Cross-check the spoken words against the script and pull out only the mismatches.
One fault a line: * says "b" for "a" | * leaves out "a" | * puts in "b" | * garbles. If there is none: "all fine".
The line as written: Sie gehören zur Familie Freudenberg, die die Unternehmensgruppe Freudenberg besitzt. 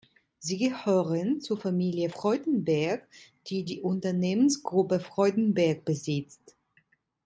all fine